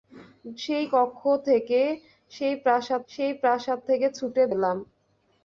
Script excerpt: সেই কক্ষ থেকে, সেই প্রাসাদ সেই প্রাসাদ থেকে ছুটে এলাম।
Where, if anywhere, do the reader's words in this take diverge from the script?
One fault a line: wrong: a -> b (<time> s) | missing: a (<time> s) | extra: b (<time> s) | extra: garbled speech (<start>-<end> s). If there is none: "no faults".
no faults